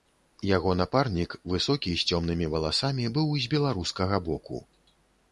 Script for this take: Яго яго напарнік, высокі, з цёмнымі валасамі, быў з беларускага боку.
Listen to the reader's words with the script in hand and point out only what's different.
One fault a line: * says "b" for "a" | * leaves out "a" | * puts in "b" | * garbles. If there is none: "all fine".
* leaves out "яго"